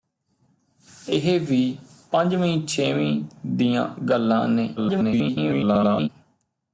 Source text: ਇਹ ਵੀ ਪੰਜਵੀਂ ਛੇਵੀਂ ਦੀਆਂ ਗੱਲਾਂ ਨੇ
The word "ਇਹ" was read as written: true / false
true